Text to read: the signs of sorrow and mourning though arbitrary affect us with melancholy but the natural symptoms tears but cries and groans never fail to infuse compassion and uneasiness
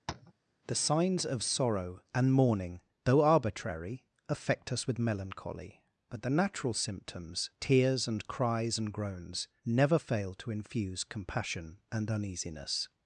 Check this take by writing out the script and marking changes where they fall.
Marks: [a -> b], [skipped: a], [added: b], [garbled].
the signs of sorrow and mourning though arbitrary affect us with melancholy but the natural symptoms tears [but -> and] cries and groans never fail to infuse compassion and uneasiness